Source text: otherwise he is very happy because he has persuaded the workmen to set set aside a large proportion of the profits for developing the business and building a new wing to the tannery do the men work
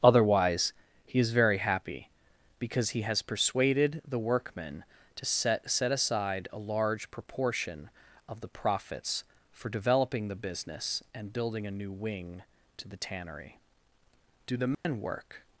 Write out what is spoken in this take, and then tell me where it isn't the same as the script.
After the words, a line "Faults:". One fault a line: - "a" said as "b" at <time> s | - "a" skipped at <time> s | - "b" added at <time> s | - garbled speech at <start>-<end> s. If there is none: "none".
otherwise he is very happy because he has persuaded the workmen to set set aside a large proportion of the profits for developing the business and building a new wing to the tannery do the men work
Faults:
none